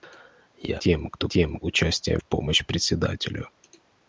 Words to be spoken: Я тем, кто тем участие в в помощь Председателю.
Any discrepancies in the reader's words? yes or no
no